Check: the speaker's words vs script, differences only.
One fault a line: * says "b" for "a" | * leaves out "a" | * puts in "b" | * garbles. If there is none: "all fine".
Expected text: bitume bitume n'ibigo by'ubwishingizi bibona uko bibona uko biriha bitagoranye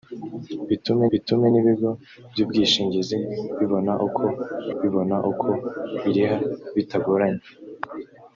all fine